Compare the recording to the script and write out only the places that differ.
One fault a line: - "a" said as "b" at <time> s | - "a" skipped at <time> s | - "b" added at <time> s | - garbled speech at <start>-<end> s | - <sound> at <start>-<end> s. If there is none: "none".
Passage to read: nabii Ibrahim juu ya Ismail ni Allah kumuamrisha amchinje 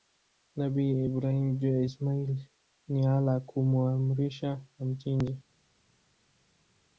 none